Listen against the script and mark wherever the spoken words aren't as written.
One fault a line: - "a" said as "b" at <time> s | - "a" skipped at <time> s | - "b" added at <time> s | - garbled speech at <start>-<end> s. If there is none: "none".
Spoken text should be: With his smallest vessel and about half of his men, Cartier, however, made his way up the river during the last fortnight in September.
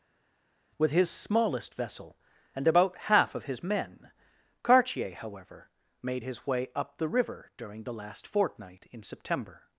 none